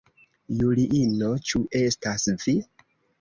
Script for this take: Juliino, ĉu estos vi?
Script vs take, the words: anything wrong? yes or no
yes